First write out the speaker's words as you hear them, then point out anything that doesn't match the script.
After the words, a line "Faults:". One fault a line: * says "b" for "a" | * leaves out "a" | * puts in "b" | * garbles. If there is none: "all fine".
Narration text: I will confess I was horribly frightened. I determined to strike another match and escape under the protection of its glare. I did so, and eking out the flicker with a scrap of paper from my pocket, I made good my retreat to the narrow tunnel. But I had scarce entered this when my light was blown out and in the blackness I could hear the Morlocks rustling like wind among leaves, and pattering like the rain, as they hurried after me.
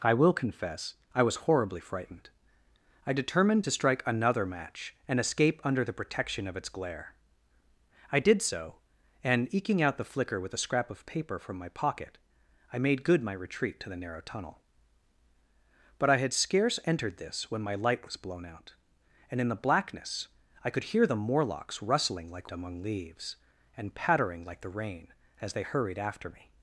I will confess I was horribly frightened. I determined to strike another match and escape under the protection of its glare. I did so, and eking out the flicker with a scrap of paper from my pocket, I made good my retreat to the narrow tunnel. But I had scarce entered this when my light was blown out and in the blackness I could hear the Morlocks rustling like among leaves, and pattering like the rain, as they hurried after me.
Faults:
* leaves out "wind"